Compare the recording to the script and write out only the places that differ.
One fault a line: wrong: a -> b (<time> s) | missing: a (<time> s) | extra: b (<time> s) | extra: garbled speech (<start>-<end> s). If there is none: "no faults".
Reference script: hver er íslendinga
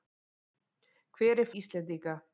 no faults